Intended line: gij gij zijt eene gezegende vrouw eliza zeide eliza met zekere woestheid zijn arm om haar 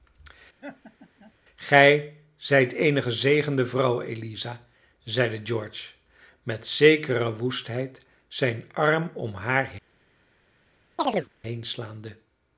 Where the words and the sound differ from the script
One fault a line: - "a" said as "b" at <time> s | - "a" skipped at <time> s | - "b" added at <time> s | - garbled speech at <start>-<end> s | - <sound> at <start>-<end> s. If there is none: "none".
- laugh at 0.6-1.3 s
- "gij" skipped at 2.2 s
- "eliza" said as "george" at 5.4 s
- chirp at 11.0-11.3 s